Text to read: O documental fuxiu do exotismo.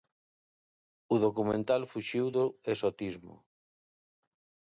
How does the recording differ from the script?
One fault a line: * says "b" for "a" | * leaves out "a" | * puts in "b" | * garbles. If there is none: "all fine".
all fine